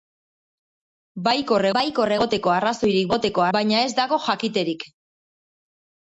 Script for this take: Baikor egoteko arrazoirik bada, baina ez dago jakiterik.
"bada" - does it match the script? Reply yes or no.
no